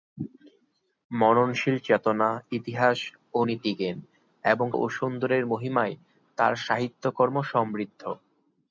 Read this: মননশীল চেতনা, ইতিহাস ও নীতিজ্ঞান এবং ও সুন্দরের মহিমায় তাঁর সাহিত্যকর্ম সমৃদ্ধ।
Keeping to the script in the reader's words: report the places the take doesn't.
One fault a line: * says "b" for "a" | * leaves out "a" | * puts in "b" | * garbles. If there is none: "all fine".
all fine